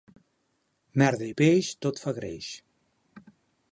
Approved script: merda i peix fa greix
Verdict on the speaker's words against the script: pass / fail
fail